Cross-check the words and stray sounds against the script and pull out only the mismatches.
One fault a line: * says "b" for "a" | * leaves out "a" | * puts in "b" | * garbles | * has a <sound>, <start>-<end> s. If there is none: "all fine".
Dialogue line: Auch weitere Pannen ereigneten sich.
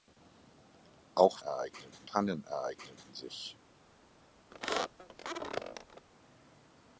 * says "ereigneten" for "weitere"
* has a squeak, 4.5-6.1 s